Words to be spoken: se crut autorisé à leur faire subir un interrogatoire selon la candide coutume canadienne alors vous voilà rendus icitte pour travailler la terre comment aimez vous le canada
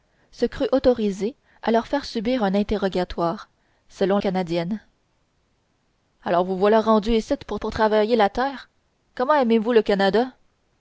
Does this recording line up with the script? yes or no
no